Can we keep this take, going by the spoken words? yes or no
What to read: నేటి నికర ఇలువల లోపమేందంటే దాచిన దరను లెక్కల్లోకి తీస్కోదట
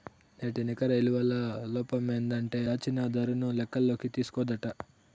yes